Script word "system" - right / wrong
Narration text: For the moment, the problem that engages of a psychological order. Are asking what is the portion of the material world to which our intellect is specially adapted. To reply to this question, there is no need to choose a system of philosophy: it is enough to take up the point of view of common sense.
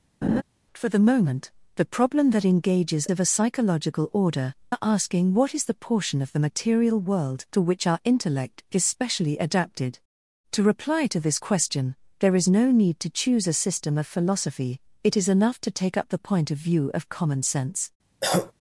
right